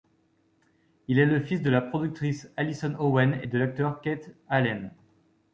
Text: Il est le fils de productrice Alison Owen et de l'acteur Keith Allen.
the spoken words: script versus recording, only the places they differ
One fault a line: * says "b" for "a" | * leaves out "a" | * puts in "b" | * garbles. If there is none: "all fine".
* puts in "la"